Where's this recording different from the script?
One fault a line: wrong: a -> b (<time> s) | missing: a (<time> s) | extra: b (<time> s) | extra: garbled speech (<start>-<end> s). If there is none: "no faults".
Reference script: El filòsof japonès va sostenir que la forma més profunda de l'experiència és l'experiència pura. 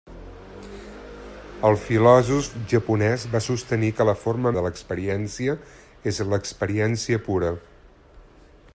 missing: més profunda (4.5 s)